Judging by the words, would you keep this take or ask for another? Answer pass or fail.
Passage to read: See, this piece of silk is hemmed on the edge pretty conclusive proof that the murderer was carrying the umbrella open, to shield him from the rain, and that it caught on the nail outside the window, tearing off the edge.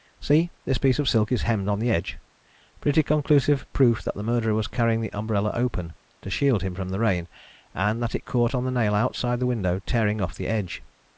pass